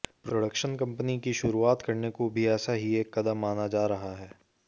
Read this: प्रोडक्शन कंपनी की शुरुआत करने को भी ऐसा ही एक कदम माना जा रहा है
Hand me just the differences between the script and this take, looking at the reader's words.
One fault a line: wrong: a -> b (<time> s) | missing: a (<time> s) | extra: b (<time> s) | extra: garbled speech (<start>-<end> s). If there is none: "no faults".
no faults